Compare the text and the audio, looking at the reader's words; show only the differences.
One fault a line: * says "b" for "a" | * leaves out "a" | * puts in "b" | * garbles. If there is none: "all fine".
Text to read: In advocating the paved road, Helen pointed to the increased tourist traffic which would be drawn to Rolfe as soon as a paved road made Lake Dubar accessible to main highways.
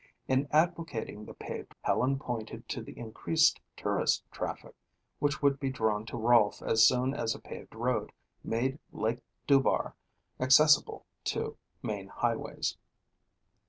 * leaves out "road"